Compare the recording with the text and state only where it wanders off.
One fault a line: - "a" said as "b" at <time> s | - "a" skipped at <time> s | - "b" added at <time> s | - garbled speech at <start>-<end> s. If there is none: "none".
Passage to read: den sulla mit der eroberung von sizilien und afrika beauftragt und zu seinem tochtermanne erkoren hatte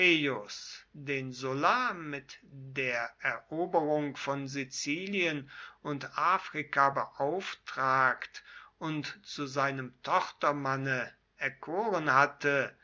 none